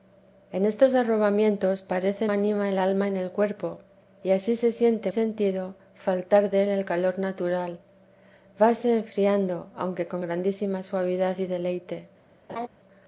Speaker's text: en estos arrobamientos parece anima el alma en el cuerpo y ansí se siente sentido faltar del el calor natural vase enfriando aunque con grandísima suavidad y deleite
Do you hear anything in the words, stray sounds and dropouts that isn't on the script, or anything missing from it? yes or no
yes